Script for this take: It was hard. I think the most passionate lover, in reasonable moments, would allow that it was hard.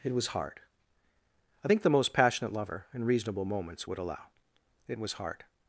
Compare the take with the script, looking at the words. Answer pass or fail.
fail